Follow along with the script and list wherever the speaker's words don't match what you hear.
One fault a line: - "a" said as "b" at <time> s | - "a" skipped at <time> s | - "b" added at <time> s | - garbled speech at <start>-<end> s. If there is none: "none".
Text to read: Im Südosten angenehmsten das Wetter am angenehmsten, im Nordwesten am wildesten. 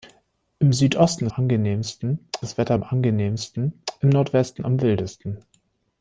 none